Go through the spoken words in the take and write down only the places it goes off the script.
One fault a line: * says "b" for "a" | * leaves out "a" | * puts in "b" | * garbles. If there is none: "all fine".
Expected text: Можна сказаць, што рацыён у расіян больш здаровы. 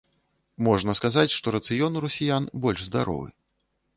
all fine